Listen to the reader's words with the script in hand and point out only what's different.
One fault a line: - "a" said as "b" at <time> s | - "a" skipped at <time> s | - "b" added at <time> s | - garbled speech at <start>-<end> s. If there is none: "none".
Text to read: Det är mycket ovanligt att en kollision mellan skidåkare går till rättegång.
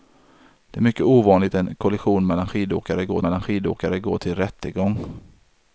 - "att" skipped at 1.6 s
- "mellan skidåkare går" added at 3.2 s